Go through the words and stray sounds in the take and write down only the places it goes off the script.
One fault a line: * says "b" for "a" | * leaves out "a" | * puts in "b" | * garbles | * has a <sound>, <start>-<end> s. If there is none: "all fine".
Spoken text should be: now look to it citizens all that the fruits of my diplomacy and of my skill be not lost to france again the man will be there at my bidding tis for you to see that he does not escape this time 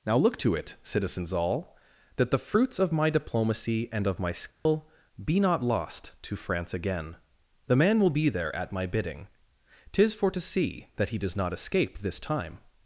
* has a dropout, 4.5-4.7 s
* leaves out "you"